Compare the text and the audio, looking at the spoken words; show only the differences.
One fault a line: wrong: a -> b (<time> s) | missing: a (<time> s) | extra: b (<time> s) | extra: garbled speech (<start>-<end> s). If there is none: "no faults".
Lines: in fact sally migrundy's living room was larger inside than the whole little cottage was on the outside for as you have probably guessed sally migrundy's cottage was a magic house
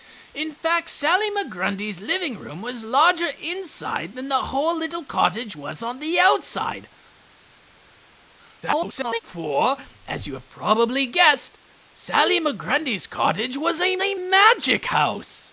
extra: garbled speech (8.6-9.2 s)
extra: a (14.0 s)